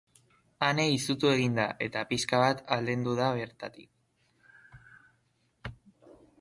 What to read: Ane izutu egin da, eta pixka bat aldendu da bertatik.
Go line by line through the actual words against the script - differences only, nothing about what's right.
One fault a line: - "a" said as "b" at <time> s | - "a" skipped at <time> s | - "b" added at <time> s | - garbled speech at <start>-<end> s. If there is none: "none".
none